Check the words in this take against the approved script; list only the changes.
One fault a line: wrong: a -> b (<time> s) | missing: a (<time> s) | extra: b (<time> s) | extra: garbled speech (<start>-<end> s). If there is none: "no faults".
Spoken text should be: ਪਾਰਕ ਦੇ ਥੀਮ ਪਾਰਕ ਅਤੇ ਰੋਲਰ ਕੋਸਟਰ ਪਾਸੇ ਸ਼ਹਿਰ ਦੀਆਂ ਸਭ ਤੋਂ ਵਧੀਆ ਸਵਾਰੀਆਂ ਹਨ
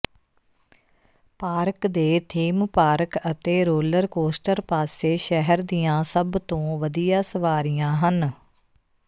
no faults